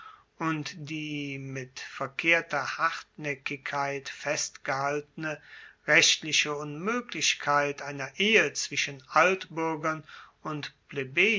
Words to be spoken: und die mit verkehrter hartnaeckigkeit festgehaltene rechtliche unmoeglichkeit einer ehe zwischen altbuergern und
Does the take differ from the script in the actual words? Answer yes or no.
no